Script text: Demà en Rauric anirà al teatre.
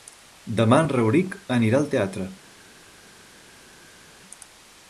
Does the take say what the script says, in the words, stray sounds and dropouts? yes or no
yes